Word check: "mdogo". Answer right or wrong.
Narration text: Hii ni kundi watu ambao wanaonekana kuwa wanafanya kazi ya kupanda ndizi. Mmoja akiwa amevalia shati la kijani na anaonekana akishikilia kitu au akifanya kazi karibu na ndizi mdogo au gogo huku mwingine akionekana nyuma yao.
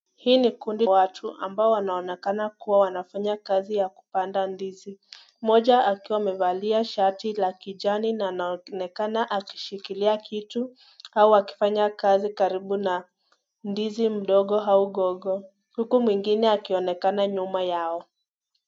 right